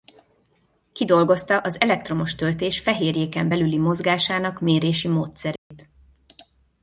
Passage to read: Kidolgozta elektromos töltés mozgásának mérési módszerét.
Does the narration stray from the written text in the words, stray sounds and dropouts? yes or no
yes